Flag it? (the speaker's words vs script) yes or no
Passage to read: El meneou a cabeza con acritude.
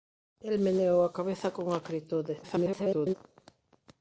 yes